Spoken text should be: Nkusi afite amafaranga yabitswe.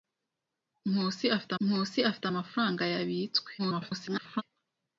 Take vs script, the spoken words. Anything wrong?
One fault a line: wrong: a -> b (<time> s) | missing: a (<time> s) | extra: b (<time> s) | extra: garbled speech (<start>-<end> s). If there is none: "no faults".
extra: nkusi afite (1.6 s)
extra: garbled speech (3.6-4.4 s)